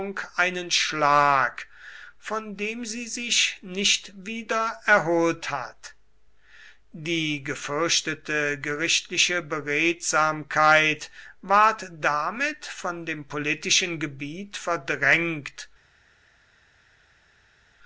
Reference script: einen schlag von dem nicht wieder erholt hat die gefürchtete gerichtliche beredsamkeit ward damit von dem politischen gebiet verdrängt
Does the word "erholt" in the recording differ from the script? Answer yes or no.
no